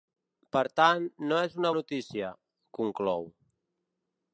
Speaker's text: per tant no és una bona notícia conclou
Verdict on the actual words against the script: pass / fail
fail